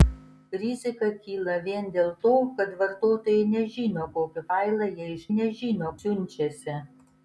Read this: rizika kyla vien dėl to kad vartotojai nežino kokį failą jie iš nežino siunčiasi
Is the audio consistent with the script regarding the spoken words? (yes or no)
yes